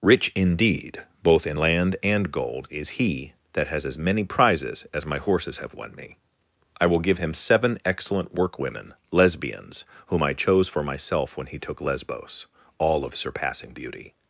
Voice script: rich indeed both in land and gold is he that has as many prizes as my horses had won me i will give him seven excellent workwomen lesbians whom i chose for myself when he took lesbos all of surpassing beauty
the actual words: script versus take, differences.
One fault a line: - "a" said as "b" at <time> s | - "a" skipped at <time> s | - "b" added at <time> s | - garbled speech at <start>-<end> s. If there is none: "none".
- "had" said as "have" at 5.6 s